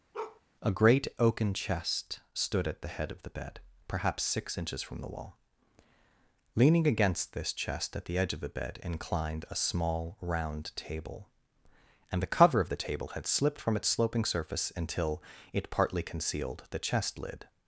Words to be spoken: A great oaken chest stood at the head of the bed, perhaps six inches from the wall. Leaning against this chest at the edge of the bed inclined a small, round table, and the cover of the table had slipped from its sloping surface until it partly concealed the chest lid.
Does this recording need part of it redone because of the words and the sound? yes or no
yes